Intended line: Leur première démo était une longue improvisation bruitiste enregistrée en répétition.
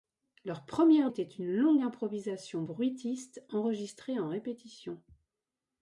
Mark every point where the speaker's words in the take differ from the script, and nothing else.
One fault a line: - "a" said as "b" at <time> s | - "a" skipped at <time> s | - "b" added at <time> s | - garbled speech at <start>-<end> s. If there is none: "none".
- "démo" skipped at 1.1 s